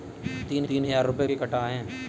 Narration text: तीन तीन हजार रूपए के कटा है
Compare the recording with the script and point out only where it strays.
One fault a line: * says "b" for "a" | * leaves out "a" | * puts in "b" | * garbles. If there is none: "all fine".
all fine